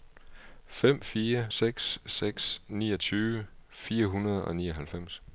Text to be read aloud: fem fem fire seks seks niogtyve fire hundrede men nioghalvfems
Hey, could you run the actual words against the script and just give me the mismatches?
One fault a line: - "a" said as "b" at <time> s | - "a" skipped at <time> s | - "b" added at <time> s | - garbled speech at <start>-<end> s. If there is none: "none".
- "fem" skipped at 1.0 s
- "men" said as "og" at 4.4 s